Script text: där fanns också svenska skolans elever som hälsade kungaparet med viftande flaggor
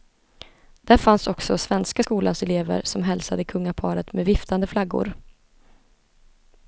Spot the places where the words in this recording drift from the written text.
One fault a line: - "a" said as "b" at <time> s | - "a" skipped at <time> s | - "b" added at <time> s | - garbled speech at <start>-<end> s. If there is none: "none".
none